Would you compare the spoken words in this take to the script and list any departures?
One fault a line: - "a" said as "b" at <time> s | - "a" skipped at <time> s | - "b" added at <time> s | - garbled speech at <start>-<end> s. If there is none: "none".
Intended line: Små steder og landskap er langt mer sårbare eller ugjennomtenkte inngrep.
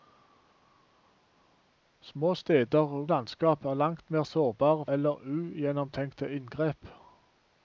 none